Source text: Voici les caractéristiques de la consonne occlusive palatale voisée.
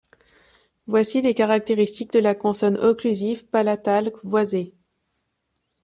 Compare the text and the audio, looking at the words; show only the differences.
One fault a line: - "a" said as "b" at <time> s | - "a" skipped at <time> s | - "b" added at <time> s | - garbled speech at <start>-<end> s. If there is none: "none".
none